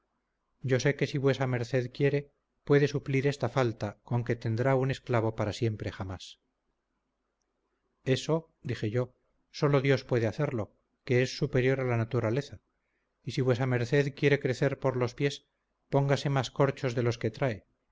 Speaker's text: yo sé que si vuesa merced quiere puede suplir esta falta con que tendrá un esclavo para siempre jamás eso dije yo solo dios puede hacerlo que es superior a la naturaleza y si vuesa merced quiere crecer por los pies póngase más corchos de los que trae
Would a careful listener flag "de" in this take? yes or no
no